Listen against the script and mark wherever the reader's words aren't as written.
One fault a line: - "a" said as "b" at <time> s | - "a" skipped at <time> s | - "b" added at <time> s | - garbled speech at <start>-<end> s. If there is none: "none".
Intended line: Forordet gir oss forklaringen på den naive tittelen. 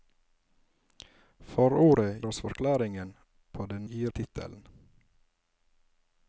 - "gir" skipped at 2.2 s
- "naive" said as "gir" at 3.9 s